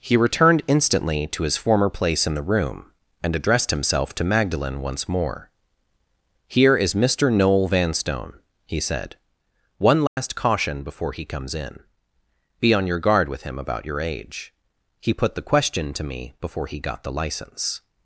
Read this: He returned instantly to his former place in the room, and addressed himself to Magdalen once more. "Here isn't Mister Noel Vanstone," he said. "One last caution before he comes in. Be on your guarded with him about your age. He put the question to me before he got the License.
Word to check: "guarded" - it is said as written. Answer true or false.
false